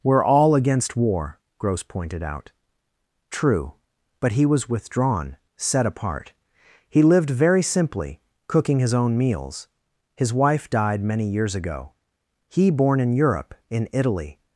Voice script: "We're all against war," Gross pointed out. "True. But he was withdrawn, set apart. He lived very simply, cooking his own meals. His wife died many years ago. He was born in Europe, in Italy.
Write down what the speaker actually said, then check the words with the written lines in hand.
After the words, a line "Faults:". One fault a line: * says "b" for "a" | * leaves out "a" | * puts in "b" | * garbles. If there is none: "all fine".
"We're all against war," Gross pointed out. "True. But he was withdrawn, set apart. He lived very simply, cooking his own meals. His wife died many years ago. He born in Europe, in Italy.
Faults:
* leaves out "was"